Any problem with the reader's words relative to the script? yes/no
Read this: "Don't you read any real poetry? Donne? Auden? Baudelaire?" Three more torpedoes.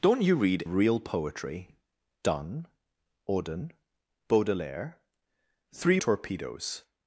yes